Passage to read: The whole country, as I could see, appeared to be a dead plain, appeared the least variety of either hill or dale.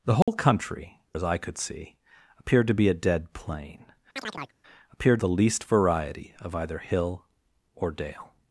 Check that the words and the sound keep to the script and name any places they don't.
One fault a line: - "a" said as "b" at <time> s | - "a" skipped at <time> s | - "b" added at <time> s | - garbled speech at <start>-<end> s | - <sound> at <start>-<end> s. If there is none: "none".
- dropout at 0.2-0.3 s
- chirp at 4.2-4.5 s